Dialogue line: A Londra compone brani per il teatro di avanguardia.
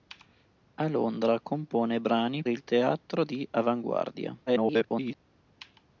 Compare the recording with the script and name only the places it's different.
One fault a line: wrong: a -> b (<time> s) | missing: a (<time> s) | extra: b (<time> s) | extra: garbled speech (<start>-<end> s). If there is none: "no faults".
missing: per (2.4 s)
extra: garbled speech (4.5-5.1 s)